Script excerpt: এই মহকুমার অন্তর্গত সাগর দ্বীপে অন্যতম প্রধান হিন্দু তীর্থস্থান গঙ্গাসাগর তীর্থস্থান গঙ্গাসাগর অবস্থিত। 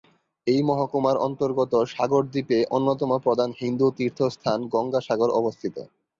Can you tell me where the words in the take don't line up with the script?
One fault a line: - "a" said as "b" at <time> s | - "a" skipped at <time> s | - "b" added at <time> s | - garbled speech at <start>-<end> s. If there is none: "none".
- "তীর্থস্থান গঙ্গাসাগর" skipped at 5.3 s